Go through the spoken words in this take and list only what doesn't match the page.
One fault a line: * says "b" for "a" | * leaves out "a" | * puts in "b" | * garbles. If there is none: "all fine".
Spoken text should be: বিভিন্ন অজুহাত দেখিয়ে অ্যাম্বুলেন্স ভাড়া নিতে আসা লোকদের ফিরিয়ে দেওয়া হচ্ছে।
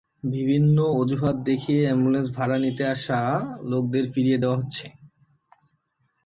all fine